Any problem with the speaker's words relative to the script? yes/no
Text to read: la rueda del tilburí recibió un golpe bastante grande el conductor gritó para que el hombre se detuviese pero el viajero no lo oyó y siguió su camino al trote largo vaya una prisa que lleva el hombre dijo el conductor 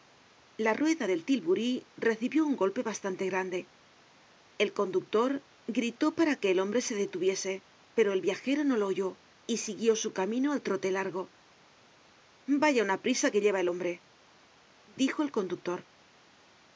no